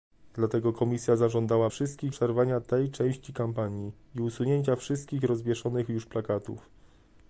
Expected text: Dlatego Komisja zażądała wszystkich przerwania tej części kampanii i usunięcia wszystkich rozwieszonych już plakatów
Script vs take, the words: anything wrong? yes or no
no